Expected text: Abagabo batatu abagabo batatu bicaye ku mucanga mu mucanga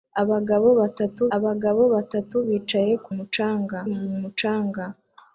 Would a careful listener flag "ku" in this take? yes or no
no